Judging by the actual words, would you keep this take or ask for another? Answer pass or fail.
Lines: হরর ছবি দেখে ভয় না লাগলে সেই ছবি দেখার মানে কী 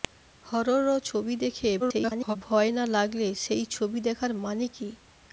fail